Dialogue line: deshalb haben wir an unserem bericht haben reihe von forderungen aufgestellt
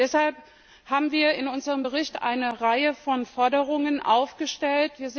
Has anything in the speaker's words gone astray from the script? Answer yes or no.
yes